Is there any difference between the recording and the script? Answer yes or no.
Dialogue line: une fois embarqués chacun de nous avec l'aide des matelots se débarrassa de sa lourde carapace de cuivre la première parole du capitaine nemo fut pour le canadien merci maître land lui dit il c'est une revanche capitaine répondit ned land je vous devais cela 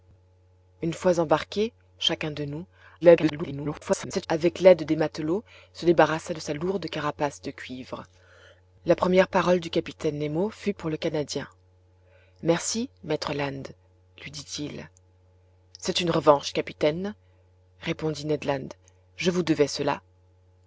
yes